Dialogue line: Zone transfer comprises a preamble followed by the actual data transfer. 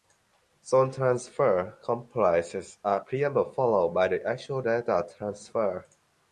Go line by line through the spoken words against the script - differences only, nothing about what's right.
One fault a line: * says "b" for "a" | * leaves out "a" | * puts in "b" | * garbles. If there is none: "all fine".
all fine